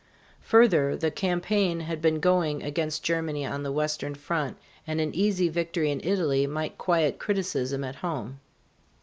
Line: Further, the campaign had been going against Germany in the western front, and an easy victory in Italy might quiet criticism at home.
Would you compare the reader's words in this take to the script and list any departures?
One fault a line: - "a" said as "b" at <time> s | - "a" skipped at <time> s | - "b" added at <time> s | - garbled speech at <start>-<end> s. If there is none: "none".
- "in" said as "on" at 3.5 s